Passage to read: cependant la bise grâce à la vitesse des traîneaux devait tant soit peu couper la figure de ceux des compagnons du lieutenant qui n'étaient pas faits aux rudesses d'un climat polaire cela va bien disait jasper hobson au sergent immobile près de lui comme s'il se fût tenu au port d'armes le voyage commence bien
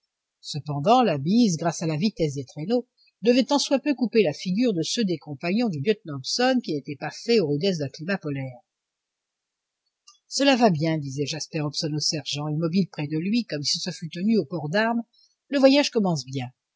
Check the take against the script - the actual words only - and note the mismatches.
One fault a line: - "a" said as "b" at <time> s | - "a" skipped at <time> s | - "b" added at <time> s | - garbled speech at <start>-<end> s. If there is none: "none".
- "hobson" added at 6.2 s